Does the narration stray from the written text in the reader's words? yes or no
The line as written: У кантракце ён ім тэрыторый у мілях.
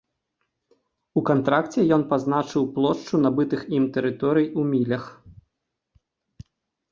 yes